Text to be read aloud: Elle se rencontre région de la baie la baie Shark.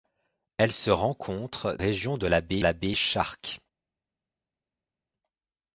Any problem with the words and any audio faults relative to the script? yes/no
no